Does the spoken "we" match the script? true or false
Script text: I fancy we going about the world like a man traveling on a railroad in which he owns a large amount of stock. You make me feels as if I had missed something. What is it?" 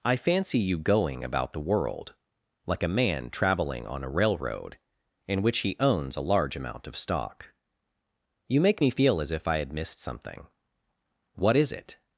false